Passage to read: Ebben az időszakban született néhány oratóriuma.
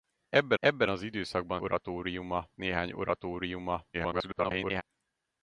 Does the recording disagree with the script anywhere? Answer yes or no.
yes